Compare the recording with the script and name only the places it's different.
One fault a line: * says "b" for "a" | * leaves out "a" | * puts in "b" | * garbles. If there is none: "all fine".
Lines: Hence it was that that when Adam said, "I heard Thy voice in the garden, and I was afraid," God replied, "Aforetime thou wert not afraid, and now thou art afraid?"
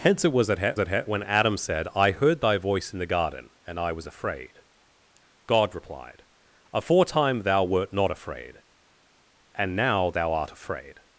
all fine